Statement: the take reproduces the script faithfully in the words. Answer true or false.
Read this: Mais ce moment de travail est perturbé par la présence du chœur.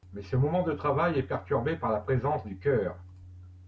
true